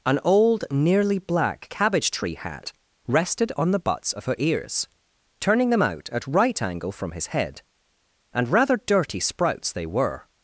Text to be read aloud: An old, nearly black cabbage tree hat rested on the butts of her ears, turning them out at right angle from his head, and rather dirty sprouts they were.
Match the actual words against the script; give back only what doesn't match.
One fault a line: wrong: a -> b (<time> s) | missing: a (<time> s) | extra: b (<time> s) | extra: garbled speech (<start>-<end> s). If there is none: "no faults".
no faults